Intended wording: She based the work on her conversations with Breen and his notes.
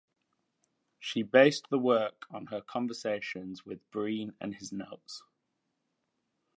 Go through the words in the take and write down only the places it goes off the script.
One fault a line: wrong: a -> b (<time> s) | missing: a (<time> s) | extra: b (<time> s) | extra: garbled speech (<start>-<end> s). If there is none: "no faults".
no faults